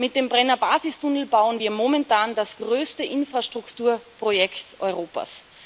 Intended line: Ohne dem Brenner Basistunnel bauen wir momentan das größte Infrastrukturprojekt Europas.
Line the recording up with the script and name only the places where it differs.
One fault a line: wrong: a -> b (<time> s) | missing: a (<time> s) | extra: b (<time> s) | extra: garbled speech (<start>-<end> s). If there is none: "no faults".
wrong: Ohne -> Mit (0.0 s)